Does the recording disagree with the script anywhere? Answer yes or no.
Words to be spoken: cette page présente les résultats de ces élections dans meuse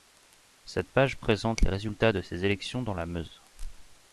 yes